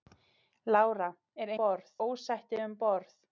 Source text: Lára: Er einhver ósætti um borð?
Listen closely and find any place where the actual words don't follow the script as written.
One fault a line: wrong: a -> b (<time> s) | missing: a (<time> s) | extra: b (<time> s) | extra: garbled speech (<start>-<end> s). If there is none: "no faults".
wrong: einhver -> borð (1.6 s)